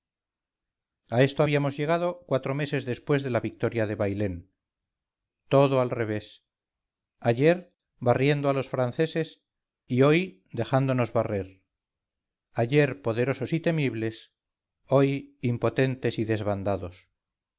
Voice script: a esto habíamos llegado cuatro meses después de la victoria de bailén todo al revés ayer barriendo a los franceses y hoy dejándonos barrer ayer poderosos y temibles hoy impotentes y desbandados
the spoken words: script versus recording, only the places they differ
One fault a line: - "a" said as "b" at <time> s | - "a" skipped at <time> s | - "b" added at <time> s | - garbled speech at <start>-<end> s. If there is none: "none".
none